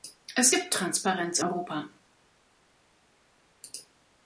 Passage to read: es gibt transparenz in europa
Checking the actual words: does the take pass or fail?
fail